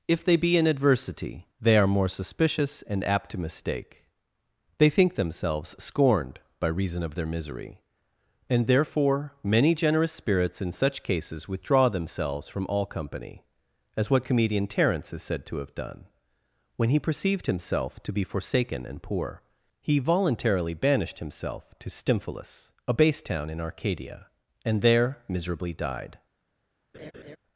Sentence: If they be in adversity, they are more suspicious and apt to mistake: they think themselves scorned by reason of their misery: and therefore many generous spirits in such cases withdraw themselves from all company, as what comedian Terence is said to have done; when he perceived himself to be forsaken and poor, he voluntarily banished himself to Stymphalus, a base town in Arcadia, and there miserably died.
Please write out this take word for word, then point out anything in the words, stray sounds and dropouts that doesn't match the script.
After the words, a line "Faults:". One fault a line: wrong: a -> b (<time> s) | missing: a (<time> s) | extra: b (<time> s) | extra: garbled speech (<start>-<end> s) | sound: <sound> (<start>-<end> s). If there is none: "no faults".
If they be in adversity, they are more suspicious and apt to mistake: they think themselves scorned by reason of their misery: and therefore many generous spirits in such cases withdraw themselves from all company, as what comedian Terence is said to have done; when he perceived himself to be forsaken and poor, he voluntarily banished himself to Stymphalus, a base town in Arcadia, and there miserably died.
Faults:
sound: laugh (26.9-27.4 s)